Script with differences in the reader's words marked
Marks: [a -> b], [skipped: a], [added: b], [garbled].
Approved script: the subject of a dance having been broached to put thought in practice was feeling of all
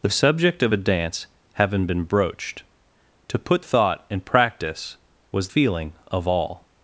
the subject of a dance having been broached to put thought in practice was feeling of all